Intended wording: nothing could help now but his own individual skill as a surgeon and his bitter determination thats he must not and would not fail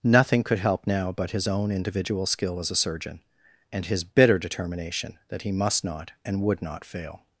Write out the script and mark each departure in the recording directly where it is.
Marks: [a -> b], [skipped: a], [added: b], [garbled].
nothing could help now but his own individual skill as a surgeon and his bitter determination [thats -> that] he must not and would not fail